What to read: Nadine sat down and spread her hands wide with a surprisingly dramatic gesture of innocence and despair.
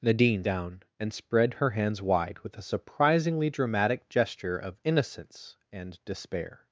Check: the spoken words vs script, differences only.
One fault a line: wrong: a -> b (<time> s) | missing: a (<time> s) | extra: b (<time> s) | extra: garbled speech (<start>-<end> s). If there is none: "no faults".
missing: sat (0.4 s)